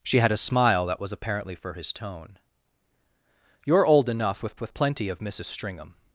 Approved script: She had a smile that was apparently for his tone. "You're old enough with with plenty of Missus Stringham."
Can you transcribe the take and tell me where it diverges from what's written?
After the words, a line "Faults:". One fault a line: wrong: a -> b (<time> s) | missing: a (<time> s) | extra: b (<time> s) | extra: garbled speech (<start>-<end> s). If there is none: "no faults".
She had a smile that was apparently for his tone. "You're old enough with with plenty of Missus Stringham."
Faults:
no faults